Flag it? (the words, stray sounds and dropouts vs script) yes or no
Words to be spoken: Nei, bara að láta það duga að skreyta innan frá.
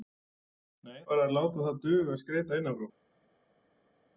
no